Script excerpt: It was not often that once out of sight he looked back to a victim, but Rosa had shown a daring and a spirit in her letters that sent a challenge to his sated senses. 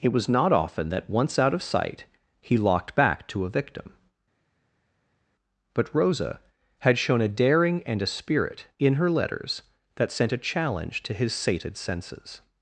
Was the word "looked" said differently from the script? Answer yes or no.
yes